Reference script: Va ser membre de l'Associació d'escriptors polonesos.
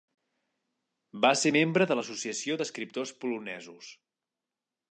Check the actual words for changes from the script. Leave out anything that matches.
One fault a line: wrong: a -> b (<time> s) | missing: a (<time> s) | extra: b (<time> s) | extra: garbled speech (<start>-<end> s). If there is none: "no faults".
no faults